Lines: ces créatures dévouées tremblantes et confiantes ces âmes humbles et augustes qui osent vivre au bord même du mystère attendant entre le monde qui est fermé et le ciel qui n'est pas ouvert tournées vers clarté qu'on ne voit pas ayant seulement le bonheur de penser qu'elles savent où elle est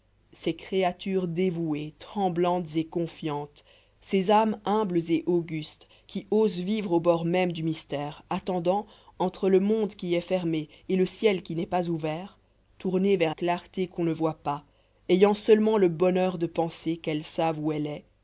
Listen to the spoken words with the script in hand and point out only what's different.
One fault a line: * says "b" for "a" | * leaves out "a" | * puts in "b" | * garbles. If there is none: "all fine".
all fine